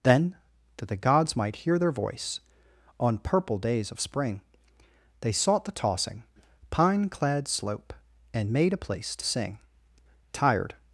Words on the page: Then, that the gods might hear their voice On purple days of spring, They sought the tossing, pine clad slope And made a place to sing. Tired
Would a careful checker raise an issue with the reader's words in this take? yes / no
no